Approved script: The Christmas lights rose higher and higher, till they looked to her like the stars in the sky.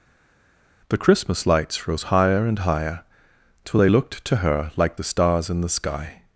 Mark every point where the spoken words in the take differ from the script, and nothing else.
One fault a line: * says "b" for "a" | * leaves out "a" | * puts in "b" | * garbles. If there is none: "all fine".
all fine